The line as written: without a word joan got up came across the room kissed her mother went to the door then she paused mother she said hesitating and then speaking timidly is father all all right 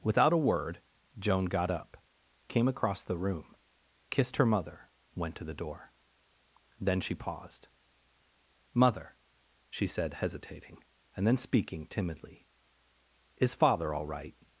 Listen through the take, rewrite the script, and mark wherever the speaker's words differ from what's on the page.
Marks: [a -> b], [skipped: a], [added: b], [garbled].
without a word joan got up came across the room kissed her mother went to the door then she paused mother she said hesitating and then speaking timidly is father all [skipped: all] right